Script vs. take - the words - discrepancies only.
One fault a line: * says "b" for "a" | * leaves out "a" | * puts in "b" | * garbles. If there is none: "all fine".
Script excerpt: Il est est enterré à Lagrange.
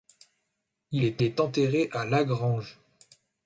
all fine